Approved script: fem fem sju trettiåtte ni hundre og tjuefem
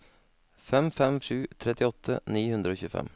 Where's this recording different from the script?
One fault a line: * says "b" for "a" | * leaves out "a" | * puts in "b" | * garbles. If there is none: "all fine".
all fine